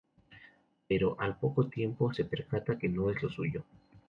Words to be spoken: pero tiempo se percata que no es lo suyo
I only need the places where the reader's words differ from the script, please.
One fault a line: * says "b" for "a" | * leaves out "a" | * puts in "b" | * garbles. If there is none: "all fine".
* puts in "al poco"